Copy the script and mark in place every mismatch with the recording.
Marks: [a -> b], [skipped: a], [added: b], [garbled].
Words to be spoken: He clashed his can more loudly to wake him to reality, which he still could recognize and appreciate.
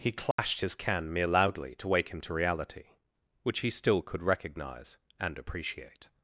He clashed his can [more -> mere] loudly to wake him to reality, which he still could recognize and appreciate.